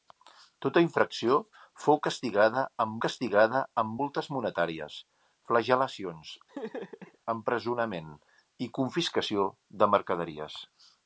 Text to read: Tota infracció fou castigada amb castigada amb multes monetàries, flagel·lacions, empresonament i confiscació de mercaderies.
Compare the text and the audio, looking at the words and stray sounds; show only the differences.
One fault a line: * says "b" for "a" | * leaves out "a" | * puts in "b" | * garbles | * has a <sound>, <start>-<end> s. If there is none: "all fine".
* has a laugh, 6.5-7.2 s